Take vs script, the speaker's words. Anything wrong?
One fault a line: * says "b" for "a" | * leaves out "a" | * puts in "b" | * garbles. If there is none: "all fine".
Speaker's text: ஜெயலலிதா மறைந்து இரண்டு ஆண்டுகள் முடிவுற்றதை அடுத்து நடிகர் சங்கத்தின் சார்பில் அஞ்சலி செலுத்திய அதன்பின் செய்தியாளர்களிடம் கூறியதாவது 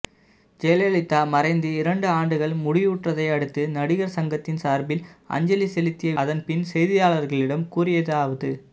all fine